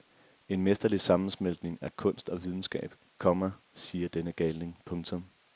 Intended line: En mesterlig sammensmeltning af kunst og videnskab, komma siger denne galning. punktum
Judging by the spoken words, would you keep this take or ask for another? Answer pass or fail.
pass